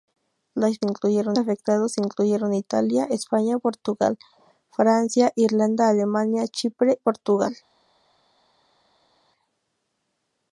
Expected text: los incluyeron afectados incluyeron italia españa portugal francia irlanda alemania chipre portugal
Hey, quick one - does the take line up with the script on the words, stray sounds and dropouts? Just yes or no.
yes